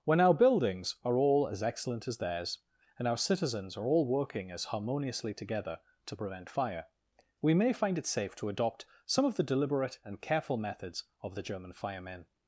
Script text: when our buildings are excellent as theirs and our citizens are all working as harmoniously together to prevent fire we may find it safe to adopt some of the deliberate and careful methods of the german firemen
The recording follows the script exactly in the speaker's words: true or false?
false